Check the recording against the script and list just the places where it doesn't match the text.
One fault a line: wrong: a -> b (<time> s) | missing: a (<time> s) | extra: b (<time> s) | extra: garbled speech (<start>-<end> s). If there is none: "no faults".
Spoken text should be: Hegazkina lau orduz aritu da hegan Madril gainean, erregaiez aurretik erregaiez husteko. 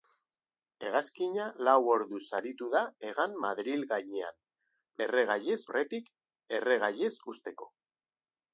no faults